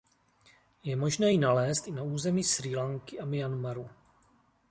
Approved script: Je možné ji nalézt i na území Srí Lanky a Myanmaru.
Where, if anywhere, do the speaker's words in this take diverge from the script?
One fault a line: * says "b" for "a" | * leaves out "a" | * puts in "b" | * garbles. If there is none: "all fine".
all fine